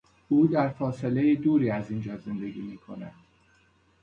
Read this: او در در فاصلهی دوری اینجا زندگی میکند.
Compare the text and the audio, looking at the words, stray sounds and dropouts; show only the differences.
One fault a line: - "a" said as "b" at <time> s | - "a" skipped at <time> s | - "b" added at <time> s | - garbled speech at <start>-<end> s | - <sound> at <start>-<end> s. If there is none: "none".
- "در" skipped at 0.7 s
- "از" added at 1.7 s